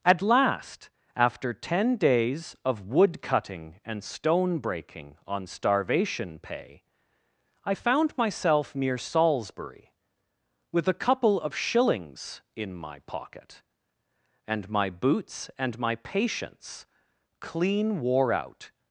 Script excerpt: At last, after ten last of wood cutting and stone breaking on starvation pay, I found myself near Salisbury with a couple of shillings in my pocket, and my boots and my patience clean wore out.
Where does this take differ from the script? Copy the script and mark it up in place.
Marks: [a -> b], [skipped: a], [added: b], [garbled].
At last, after ten [last -> days] of wood cutting and stone breaking on starvation pay, I found myself near Salisbury with a couple of shillings in my pocket, and my boots and my patience clean wore out.